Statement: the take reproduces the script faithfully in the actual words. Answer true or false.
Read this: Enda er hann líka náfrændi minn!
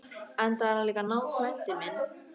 true